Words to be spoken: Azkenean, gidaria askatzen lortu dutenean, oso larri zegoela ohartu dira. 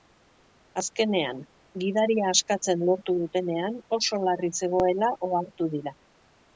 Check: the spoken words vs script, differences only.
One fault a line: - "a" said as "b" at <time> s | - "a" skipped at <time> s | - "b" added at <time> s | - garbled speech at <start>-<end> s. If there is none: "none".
none